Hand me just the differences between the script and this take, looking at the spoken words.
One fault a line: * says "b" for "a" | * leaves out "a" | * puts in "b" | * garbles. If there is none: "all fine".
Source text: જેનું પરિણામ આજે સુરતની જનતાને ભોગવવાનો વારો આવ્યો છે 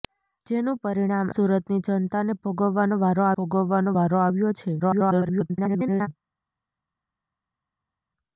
* leaves out "આજે"
* puts in "ભોગવવાનો વારો"
* garbles